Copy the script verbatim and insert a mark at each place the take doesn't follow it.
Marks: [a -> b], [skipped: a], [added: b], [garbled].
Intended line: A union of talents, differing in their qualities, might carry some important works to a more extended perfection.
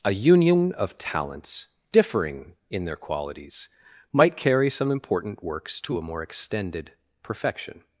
A union of talents, differing in their qualities, might carry some important works to a more extended perfection.